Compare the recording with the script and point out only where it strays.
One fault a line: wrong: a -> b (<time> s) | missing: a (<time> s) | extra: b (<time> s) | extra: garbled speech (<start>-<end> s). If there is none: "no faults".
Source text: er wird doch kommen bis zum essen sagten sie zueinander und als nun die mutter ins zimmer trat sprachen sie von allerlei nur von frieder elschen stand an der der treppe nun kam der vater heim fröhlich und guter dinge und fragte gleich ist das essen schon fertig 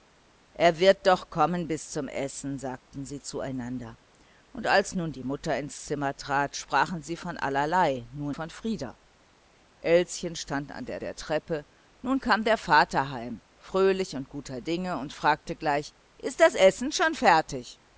no faults